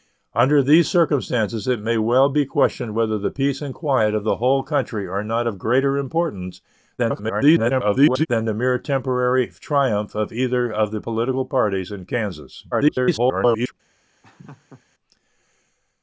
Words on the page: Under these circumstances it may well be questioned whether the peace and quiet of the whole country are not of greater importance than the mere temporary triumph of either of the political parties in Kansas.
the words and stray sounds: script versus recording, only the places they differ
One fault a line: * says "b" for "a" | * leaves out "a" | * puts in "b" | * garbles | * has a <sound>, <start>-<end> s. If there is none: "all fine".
* garbles
* garbles
* has a laugh, 14.2-14.8 s